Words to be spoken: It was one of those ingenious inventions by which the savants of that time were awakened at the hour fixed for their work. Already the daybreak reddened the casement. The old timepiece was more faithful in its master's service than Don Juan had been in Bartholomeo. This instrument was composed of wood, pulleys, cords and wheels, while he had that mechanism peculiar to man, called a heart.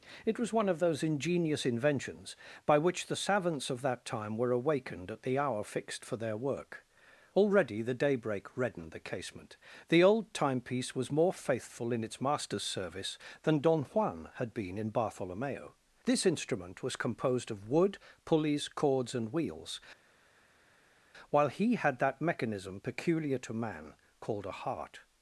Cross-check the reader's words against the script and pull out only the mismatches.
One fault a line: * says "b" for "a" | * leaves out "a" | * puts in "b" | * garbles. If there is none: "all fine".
all fine